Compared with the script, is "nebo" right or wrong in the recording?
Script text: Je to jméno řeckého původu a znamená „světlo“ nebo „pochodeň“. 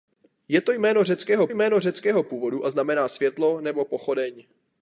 right